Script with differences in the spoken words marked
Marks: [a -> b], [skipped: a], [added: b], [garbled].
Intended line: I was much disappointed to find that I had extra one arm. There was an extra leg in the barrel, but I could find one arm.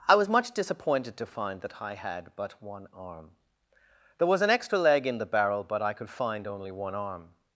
I was much disappointed to find that I had [extra -> but] one arm. There was an extra leg in the barrel, but I could find [added: only] one arm.